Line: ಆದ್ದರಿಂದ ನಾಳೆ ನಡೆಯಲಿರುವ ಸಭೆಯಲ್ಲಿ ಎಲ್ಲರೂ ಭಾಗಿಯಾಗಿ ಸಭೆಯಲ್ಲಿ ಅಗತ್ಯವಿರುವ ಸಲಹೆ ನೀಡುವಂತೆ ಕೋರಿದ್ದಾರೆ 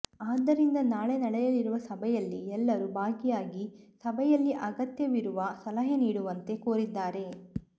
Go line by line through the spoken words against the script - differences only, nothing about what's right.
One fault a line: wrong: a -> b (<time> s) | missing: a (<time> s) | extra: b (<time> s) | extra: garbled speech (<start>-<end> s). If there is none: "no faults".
no faults